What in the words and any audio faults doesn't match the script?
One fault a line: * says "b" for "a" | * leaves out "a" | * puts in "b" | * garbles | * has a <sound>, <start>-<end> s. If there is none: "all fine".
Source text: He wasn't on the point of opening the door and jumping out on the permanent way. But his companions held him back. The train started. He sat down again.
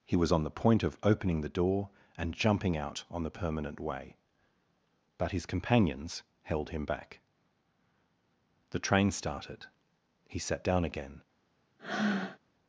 * says "was" for "wasn't"
* has a breath, 11.8-12.4 s